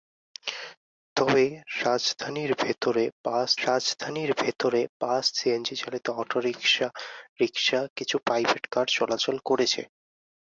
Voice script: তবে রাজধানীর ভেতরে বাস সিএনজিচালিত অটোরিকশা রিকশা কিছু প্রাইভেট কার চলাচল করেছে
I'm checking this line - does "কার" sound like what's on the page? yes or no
yes